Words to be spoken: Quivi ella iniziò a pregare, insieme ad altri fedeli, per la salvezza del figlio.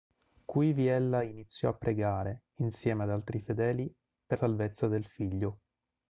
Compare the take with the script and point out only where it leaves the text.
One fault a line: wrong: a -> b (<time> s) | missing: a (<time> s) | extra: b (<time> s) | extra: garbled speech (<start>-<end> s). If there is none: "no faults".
missing: la (4.4 s)